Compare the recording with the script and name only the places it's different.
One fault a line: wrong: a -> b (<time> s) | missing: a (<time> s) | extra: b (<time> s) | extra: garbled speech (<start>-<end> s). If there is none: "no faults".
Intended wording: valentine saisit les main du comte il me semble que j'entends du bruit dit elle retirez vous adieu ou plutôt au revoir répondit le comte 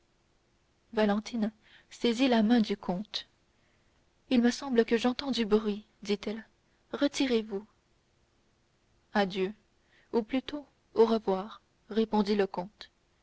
wrong: les -> la (2.3 s)